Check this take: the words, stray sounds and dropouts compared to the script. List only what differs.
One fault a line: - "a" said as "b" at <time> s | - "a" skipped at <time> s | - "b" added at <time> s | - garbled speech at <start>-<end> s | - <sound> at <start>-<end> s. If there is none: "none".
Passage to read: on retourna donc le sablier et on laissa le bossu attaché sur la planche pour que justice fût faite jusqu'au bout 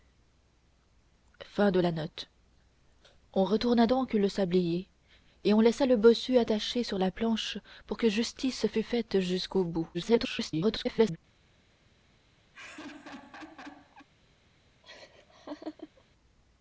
- garbled speech at 9.9-11.2 s
- laugh at 12.5-14.1 s
- laugh at 14.8-16.0 s